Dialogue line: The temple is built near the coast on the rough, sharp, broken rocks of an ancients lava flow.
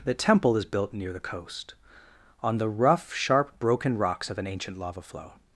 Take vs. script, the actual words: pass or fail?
fail